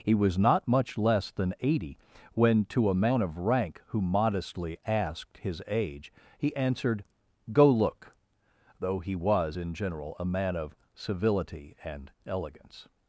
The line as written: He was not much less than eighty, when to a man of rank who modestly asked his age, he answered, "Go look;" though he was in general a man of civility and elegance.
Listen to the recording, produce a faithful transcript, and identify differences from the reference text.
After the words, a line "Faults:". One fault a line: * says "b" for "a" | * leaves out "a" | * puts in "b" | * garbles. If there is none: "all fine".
He was not much less than eighty, when to a man of rank who modestly asked his age, he answered, "Go look;" though he was in general a man of civility and elegance.
Faults:
all fine